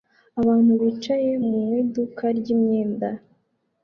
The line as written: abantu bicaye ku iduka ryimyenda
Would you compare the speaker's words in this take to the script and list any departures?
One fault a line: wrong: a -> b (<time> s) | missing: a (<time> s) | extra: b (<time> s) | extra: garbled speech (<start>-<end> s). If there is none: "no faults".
wrong: ku -> mu (1.4 s)